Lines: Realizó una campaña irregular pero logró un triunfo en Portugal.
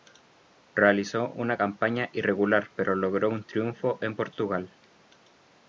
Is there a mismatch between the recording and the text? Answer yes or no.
no